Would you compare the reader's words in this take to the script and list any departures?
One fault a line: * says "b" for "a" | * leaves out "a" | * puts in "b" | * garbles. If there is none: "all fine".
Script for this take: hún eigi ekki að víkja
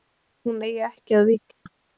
all fine